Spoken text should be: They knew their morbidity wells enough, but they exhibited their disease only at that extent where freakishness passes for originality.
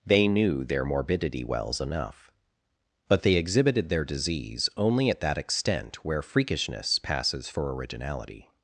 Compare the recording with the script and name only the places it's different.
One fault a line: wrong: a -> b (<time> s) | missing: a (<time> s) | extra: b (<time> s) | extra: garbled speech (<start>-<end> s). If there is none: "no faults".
no faults